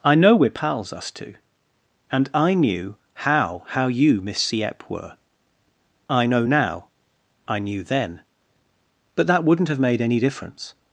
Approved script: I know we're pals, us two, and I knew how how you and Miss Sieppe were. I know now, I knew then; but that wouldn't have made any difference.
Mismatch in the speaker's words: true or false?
true